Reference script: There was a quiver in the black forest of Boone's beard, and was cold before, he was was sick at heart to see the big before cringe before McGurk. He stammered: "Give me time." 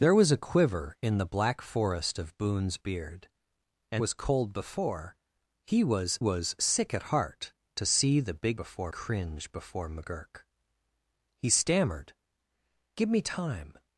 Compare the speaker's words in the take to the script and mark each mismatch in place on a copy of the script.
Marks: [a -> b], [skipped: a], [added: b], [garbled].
There was a quiver in the black forest of Boone's beard, and was cold before, he was was sick at heart to see the big before cringe before McGurk. He stammered: "Give me time."